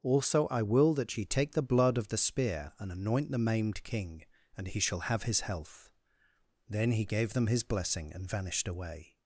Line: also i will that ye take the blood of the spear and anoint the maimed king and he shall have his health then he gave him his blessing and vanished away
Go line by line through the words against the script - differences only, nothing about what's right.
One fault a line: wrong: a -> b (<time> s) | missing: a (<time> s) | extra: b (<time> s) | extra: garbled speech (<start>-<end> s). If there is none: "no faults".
wrong: him -> them (7.3 s)